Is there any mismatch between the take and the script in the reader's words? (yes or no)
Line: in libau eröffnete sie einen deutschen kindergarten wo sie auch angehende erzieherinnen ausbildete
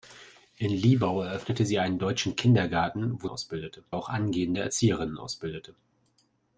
yes